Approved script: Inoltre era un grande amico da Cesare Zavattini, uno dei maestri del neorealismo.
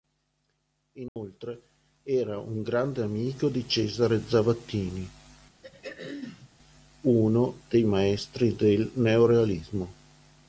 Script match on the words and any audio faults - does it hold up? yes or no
no